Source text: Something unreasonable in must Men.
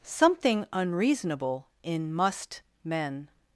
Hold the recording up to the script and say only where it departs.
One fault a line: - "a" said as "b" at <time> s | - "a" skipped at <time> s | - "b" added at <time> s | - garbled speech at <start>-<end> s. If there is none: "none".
none